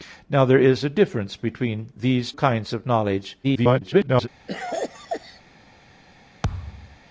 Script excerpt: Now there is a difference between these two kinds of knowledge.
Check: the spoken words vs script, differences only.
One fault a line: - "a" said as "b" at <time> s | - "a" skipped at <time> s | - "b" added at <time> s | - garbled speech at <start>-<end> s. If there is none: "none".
- "two" skipped at 2.3 s
- garbled speech at 3.4-4.3 s